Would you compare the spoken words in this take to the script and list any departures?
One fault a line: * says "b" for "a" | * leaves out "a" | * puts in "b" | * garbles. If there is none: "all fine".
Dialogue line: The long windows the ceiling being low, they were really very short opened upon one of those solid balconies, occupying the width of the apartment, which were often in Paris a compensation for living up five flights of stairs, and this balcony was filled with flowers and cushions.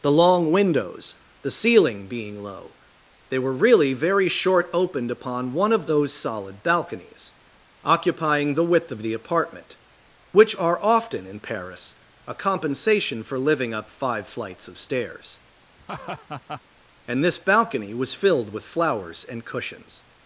* says "are" for "were"